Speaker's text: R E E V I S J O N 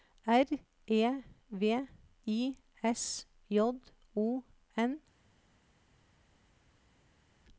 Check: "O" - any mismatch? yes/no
no